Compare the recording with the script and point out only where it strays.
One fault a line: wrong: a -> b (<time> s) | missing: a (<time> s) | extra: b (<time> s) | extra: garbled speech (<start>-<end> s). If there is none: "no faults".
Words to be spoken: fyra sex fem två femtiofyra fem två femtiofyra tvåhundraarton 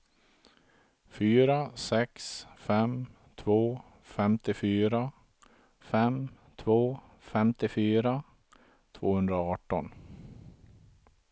no faults